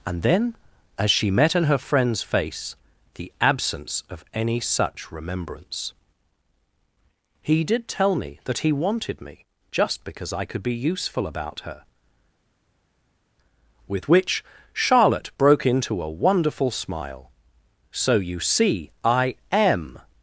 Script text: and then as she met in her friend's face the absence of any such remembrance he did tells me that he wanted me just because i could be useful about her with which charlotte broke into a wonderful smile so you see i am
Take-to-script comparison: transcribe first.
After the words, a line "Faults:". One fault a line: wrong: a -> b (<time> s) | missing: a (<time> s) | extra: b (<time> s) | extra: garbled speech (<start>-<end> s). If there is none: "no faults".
and then as she met in her friend's face the absence of any such remembrance he did tell me that he wanted me just because i could be useful about her with which charlotte broke into a wonderful smile so you see i am
Faults:
wrong: tells -> tell (7.9 s)